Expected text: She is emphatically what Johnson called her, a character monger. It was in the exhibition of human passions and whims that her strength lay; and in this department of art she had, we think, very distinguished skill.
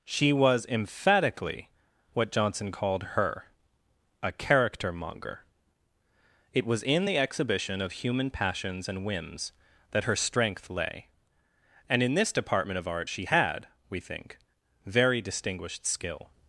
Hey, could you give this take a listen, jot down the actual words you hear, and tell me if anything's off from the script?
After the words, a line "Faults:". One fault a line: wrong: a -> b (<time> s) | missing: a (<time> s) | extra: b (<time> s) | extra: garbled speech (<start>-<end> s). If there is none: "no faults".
She was emphatically what Johnson called her, a character monger. It was in the exhibition of human passions and whims that her strength lay; and in this department of art she had, we think, very distinguished skill.
Faults:
wrong: is -> was (0.3 s)